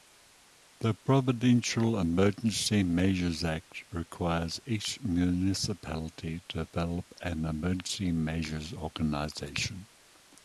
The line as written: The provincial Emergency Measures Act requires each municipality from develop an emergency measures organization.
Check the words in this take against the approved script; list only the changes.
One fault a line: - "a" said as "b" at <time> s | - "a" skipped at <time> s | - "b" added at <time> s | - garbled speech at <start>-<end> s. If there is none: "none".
- "from" said as "to" at 6.5 s